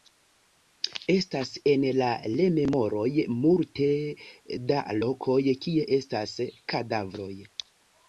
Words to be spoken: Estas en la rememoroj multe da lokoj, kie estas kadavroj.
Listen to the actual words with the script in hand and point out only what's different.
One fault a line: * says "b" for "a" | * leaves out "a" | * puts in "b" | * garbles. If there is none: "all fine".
all fine